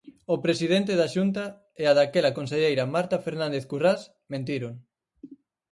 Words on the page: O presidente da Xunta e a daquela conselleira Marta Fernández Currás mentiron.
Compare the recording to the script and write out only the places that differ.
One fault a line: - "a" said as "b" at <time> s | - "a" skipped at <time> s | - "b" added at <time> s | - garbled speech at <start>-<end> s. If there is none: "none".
none